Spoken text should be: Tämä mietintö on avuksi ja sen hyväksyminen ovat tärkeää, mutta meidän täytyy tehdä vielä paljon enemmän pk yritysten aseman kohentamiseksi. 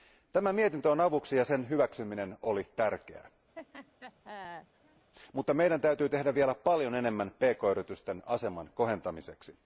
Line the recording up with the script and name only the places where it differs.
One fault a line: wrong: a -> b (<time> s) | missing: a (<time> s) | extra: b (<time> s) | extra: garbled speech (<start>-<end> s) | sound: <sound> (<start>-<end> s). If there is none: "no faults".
wrong: ovat -> oli (2.4 s)
sound: laugh (3.6-5.1 s)